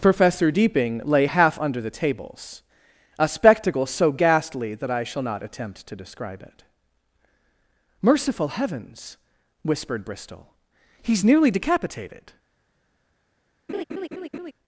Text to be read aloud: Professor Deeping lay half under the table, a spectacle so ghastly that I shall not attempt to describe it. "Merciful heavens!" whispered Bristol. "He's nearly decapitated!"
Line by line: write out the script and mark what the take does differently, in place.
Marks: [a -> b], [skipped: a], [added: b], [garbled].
Professor Deeping lay half under the [table, -> tables] a spectacle so ghastly that I shall not attempt to describe it. "Merciful heavens!" whispered Bristol. "He's nearly decapitated!"